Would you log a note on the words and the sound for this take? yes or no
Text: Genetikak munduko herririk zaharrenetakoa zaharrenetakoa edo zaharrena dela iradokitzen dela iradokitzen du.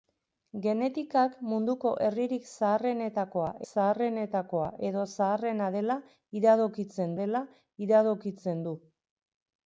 no